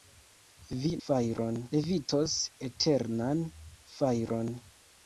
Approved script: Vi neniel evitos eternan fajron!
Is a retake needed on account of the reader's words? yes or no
yes